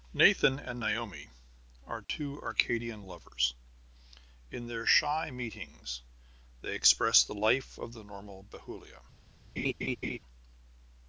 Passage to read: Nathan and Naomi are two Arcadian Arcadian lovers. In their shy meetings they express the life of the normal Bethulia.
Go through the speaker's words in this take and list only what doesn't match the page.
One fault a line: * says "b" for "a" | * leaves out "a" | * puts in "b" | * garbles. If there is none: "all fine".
* leaves out "Arcadian"